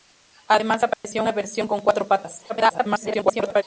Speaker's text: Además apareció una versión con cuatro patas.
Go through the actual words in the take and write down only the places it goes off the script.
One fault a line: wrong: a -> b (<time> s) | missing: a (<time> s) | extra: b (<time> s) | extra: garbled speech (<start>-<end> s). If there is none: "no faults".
extra: garbled speech (2.5-3.6 s)